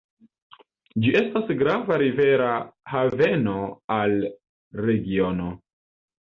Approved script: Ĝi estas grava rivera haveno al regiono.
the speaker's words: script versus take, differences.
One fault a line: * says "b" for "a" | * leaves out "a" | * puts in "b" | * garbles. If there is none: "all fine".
all fine